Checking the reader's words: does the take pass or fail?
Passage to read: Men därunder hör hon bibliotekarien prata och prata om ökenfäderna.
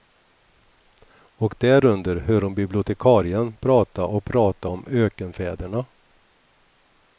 fail